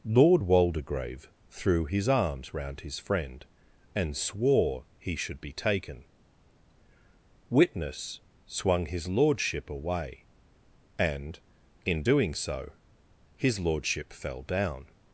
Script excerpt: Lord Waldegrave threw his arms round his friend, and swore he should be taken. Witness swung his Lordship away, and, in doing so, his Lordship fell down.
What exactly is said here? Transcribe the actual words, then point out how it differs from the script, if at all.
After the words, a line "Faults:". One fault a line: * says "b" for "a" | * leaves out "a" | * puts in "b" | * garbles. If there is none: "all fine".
Lord Waldegrave threw his arms round his friend, and swore he should be taken. Witness swung his Lordship away, and, in doing so, his Lordship fell down.
Faults:
all fine